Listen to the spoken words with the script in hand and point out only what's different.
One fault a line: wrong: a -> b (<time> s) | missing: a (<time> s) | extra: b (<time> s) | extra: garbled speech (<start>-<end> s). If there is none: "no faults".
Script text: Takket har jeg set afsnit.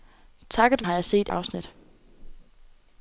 no faults